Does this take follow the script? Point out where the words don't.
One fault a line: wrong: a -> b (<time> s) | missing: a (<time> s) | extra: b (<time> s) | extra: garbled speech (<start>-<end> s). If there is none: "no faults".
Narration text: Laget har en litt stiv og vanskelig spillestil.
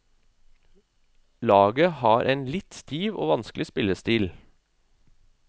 no faults